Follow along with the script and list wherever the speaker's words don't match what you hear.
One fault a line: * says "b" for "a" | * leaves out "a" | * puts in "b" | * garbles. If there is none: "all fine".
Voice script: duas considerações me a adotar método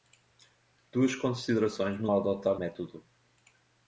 all fine